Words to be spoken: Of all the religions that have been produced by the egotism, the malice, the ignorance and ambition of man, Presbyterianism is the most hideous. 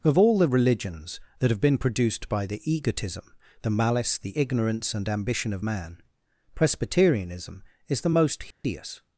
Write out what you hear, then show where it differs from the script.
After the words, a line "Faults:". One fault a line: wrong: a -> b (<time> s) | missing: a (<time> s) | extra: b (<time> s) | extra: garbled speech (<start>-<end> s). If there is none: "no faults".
Of all the religions that have been produced by the egotism, the malice, the ignorance and ambition of man, Presbyterianism is the most hideous.
Faults:
no faults